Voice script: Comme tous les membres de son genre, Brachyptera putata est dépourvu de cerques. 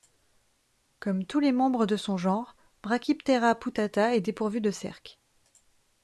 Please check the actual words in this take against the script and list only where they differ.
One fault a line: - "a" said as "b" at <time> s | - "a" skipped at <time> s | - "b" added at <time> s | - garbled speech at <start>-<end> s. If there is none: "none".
none